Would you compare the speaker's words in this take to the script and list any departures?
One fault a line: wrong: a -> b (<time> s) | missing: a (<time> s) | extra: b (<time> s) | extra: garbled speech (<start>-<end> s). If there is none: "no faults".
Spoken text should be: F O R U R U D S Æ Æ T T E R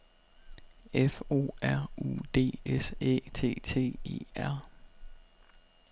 missing: R U (2.2 s)
missing: Æ (3.3 s)